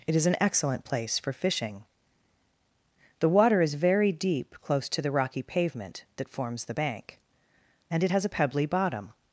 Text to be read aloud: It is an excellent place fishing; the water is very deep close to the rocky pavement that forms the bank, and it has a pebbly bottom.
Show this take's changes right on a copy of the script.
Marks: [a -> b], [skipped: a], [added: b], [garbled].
It is an excellent place [added: for] fishing; the water is very deep close to the rocky pavement that forms the bank, and it has a pebbly bottom.